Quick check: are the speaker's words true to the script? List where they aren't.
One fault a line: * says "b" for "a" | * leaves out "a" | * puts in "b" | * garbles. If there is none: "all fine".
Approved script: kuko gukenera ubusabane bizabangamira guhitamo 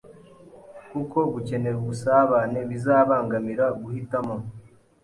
all fine